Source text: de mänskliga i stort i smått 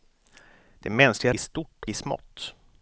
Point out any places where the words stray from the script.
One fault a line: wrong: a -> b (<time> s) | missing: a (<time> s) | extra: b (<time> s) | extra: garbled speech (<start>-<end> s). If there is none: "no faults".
no faults